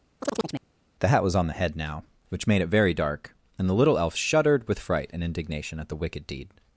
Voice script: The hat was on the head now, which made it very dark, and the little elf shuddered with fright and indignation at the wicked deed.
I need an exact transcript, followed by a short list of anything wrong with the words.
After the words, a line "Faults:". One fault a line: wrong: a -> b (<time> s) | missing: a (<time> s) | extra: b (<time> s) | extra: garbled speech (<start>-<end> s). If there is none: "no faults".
The hat was on the head now, which made it very dark, and the little elf shuddered with fright and indignation at the wicked deed.
Faults:
no faults